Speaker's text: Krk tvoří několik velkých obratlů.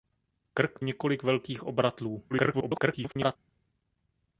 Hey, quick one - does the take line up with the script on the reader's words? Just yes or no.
no